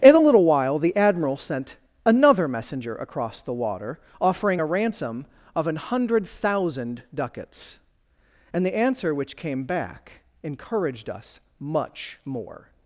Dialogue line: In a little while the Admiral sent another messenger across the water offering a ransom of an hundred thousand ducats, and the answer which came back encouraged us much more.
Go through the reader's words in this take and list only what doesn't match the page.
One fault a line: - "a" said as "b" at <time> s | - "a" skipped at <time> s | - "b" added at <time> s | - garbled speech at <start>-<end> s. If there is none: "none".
none